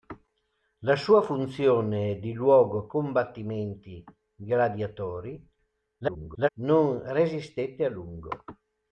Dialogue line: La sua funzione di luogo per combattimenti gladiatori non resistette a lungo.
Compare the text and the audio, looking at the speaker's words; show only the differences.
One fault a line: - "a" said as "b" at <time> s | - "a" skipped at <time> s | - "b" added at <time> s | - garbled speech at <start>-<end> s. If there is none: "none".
- "per" skipped at 2.9 s
- garbled speech at 6.0-6.5 s